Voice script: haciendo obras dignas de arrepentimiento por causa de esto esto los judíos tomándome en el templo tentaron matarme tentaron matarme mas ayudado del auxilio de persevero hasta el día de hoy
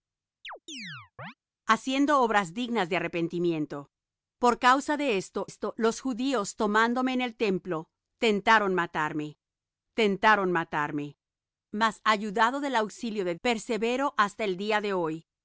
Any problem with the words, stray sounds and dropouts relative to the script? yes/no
yes